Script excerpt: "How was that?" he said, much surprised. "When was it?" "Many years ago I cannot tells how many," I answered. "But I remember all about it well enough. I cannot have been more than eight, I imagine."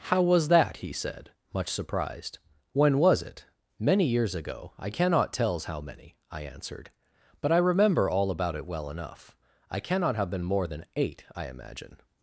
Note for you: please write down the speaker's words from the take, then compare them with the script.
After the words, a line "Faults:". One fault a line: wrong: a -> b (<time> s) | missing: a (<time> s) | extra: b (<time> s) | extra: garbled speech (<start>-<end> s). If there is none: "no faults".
"How was that?" he said, much surprised. "When was it?" "Many years ago I cannot tells how many," I answered. "But I remember all about it well enough. I cannot have been more than eight, I imagine."
Faults:
no faults